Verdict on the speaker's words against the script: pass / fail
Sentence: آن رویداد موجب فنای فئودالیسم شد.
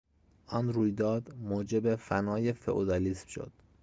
pass